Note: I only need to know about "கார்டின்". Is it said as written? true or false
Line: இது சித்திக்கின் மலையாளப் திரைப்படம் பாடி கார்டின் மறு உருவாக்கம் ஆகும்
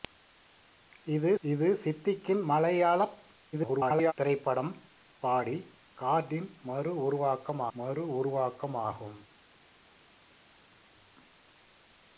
true